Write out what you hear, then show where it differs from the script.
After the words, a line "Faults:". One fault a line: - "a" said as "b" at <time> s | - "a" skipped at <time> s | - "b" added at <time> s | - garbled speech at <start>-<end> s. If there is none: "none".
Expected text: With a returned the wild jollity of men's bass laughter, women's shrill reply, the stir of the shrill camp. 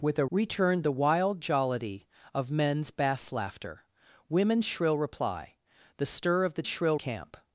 With a returned the wild jollity of men's bass laughter, women's shrill reply, the stir of the shrill camp.
Faults:
none